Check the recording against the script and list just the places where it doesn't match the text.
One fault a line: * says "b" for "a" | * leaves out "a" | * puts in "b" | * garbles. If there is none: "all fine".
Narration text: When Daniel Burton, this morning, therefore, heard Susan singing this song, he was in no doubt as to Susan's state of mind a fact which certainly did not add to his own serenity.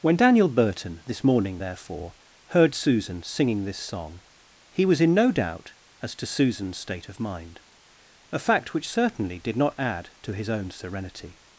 all fine